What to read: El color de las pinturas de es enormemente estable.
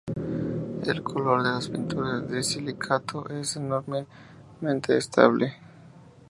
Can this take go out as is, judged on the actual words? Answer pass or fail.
fail